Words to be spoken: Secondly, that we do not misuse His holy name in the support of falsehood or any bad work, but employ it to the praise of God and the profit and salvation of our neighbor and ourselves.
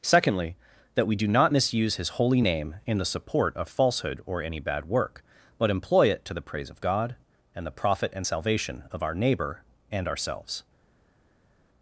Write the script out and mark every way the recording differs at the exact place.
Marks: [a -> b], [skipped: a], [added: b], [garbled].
Secondly, that we do not misuse His holy name in the support of falsehood or any bad work, but employ it to the praise of God and the profit and salvation of our neighbor and ourselves.